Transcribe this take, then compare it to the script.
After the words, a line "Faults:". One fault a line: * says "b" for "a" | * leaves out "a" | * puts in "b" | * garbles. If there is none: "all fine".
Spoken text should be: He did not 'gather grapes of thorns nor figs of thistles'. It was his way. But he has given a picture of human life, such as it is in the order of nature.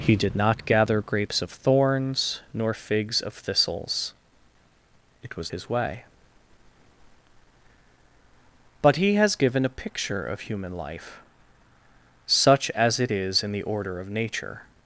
He did not 'gather grapes of thorns nor figs of thistles'. It was his way. But he has given a picture of human life, such as it is in the order of nature.
Faults:
all fine